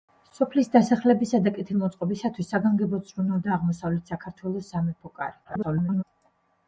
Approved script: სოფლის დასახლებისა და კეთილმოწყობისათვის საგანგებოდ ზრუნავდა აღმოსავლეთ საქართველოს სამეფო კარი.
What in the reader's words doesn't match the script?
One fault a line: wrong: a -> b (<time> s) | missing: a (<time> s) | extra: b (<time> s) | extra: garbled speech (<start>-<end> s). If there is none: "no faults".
extra: garbled speech (5.4-6.0 s)